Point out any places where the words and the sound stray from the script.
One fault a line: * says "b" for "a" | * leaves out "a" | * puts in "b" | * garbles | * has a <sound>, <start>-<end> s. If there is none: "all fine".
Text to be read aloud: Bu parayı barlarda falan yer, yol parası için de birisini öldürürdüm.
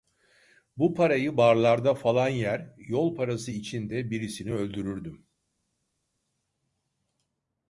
all fine